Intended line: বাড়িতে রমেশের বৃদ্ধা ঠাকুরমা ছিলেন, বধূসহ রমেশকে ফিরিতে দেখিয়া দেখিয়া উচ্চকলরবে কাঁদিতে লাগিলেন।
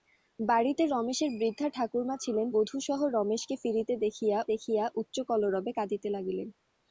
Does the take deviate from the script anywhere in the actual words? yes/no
no